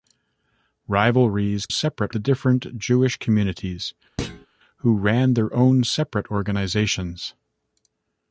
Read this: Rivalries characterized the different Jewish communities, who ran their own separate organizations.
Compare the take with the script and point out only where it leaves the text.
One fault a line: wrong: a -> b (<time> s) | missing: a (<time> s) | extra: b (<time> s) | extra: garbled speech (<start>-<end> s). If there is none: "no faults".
wrong: characterized -> separate (1.7 s)